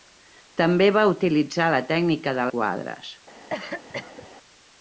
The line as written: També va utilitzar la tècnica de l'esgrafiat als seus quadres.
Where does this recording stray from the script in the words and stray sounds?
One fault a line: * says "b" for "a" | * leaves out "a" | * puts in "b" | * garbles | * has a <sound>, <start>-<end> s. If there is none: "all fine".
* leaves out "l'esgrafiat als seus"
* has a cough, 3.5-4.3 s